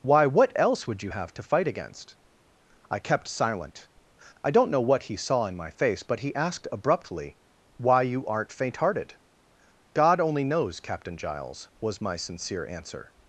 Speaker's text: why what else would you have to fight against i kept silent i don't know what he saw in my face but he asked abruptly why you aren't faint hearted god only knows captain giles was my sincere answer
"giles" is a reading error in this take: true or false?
false